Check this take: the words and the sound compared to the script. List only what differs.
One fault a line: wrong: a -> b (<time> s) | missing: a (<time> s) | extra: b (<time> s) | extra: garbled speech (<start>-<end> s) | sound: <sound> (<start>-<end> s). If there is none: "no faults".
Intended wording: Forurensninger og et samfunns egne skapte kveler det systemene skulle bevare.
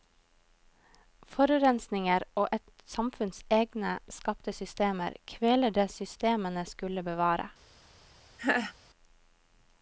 extra: systemer (4.6 s)
sound: laugh (8.4-8.7 s)